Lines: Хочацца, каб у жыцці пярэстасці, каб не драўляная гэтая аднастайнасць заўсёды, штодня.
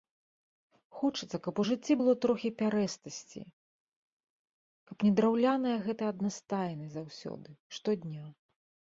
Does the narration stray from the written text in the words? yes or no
yes